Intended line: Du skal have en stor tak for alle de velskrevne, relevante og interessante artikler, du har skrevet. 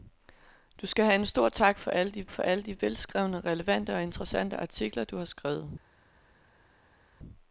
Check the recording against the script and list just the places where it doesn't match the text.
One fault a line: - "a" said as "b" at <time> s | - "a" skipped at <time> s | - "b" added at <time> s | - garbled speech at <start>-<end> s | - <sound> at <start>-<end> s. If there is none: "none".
- "for alle de" added at 2.3 s